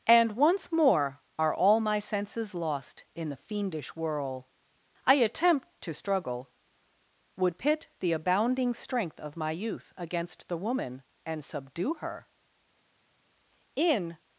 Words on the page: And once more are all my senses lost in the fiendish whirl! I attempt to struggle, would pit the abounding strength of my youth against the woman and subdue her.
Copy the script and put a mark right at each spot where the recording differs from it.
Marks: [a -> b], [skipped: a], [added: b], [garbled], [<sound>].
And once more are all my senses lost in the fiendish whirl! I attempt to struggle, would pit the abounding strength of my youth against the woman and subdue her. [added: In]